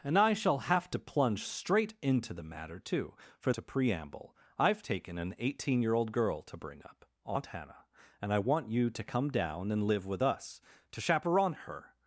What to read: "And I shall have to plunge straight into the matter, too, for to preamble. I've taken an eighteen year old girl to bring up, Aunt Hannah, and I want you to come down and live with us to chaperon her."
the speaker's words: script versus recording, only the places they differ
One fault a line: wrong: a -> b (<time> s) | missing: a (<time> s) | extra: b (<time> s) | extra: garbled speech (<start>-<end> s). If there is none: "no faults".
no faults